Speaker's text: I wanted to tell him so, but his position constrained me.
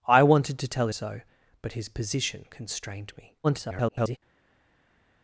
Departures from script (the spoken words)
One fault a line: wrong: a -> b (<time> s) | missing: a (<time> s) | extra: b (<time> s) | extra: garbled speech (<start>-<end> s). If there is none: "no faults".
missing: him (0.9 s)
extra: garbled speech (3.4-4.2 s)